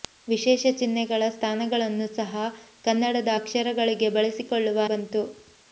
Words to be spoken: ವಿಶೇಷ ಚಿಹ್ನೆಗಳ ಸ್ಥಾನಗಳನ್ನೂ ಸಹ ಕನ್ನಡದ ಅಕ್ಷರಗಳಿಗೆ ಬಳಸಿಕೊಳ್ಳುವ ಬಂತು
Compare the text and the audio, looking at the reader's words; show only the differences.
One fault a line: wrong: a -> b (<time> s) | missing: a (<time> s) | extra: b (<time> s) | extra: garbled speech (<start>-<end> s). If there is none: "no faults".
no faults